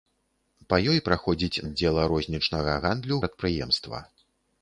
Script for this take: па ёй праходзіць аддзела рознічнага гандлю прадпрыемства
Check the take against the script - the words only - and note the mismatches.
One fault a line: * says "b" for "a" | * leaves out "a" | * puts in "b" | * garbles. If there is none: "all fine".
all fine